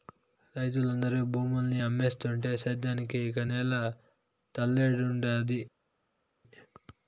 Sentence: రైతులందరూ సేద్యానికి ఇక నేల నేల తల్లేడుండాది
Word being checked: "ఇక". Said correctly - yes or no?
yes